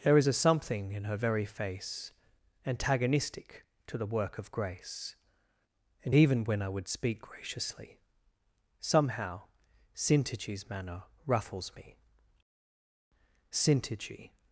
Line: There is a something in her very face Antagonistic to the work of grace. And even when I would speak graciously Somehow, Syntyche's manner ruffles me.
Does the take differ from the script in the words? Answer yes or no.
yes